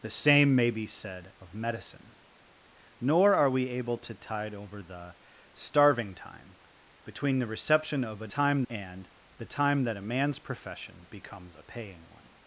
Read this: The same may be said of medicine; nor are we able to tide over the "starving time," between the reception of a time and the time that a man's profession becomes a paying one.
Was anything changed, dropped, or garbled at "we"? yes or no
no